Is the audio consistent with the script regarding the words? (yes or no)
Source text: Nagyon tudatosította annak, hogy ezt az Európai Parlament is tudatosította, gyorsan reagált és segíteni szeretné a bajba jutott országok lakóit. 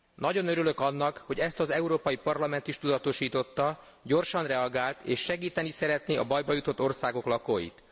no